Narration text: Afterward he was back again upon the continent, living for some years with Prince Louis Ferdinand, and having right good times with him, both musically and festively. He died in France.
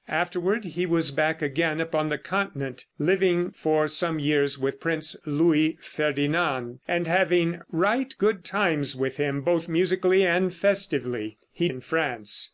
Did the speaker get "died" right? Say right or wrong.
wrong